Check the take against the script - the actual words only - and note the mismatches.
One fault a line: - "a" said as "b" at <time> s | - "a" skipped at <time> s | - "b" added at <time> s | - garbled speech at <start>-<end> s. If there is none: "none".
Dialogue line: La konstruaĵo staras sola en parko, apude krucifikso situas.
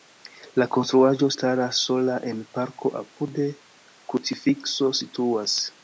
none